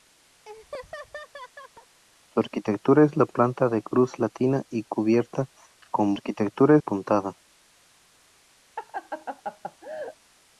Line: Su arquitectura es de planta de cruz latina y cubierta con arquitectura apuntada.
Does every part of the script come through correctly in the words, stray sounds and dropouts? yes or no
no